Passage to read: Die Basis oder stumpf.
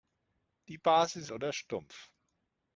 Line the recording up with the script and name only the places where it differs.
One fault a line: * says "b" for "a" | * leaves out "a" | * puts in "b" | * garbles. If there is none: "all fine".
all fine